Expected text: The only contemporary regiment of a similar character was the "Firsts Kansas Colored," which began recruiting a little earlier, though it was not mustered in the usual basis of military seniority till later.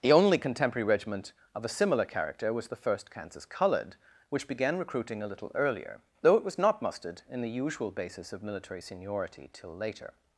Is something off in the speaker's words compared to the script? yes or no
yes